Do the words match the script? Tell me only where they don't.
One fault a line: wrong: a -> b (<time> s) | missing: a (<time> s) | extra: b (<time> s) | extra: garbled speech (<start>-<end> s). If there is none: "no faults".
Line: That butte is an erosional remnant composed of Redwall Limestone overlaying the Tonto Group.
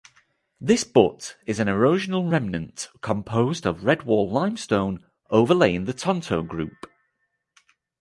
wrong: That -> This (0.6 s)